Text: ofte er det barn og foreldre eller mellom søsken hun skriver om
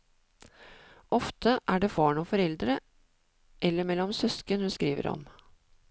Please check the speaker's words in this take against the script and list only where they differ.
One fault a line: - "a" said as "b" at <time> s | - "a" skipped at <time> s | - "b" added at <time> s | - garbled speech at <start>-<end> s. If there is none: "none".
none